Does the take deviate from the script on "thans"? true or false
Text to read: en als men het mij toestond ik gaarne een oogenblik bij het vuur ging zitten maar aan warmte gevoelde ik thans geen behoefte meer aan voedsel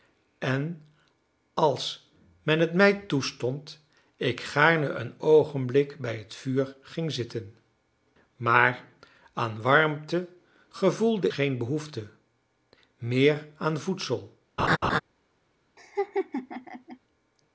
true